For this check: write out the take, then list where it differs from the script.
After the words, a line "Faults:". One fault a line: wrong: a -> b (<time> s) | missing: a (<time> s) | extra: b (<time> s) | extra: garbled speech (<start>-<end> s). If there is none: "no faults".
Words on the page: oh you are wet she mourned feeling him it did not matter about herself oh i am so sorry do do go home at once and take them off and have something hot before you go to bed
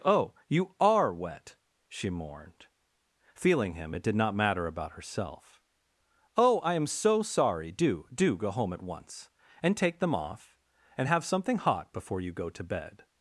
oh you are wet she mourned feeling him it did not matter about herself oh i am so sorry do do go home at once and take them off and have something hot before you go to bed
Faults:
no faults